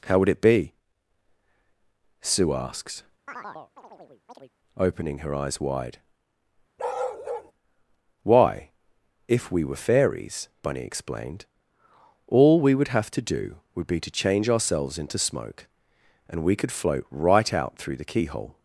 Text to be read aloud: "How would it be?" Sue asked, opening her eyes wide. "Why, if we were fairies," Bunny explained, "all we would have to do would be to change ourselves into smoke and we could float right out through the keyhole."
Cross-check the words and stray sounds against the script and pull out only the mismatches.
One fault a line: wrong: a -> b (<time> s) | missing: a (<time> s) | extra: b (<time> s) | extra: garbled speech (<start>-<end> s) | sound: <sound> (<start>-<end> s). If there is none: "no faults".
wrong: asked -> asks (2.5 s)
sound: chirp (3.3-4.5 s)
sound: bark (6.8-7.5 s)